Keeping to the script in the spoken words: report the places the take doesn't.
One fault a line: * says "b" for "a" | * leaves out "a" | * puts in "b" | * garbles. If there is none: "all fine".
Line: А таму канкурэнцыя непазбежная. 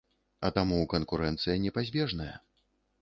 all fine